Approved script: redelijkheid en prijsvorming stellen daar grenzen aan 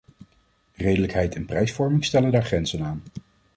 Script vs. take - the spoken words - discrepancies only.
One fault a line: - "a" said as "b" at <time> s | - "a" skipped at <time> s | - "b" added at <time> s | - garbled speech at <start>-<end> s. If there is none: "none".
none